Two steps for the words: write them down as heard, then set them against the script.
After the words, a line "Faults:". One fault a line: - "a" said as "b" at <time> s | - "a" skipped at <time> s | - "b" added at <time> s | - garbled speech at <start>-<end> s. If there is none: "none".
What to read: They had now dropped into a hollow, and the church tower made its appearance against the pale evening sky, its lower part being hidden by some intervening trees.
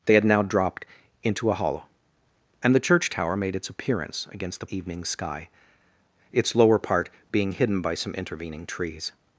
They had now dropped into a hollow, and the church tower made its appearance against the evening sky, its lower part being hidden by some intervening trees.
Faults:
- "pale" skipped at 4.7 s